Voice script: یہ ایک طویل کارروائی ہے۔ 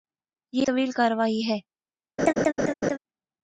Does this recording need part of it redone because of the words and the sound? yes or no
yes